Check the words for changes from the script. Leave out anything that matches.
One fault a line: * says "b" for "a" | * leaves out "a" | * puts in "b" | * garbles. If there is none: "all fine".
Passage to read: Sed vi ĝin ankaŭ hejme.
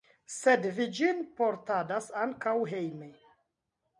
* puts in "portadas"